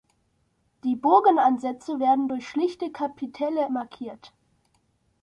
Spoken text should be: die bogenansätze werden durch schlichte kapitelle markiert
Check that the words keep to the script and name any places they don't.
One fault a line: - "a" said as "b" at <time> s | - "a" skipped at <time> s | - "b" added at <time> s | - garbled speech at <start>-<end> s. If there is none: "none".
none